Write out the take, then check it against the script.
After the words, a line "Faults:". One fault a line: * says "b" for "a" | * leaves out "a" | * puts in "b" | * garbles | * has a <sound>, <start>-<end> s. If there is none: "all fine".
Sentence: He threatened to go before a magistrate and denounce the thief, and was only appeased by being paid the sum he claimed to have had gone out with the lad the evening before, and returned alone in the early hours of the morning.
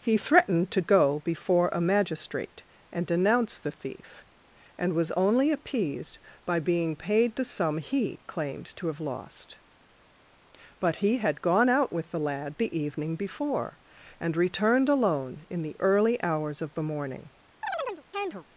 He threatened to go before a magistrate and denounce the thief, and was only appeased by being paid the sum he claimed to have lost. But he had gone out with the lad the evening before, and returned alone in the early hours of the morning.
Faults:
* puts in "lost But he"
* has a chirp, 17.6-18.4 s